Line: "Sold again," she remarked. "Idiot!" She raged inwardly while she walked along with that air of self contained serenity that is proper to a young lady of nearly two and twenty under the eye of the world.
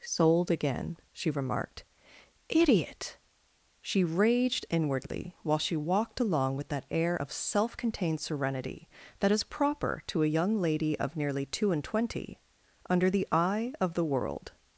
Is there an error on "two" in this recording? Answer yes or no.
no